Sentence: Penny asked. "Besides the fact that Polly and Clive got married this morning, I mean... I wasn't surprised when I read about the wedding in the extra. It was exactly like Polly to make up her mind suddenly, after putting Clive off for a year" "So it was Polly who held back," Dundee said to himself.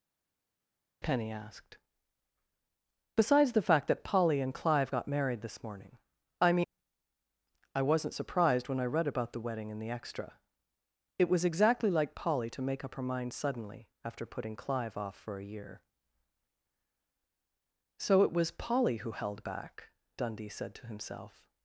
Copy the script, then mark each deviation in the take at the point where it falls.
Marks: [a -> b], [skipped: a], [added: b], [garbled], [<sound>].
Penny asked. "Besides the fact that Polly and Clive got married this morning, I mean... I wasn't surprised when I read about the wedding in the extra. It was exactly like Polly to make up her mind suddenly, after putting Clive off for a year" "So it was Polly who held back," Dundee said to himself.